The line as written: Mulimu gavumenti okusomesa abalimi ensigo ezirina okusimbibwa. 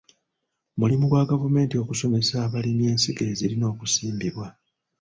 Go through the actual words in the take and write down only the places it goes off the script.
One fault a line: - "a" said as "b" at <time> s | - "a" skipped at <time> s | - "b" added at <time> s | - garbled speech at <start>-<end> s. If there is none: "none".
- "gwa" added at 1.1 s